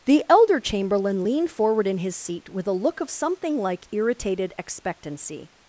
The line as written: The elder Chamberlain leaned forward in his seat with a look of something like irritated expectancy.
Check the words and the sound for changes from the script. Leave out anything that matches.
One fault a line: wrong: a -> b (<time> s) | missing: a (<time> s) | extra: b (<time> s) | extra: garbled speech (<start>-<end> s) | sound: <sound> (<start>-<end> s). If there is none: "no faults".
no faults